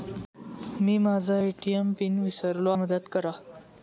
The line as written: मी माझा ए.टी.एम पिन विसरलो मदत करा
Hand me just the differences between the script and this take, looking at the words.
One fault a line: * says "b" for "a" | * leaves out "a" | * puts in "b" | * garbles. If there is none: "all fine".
all fine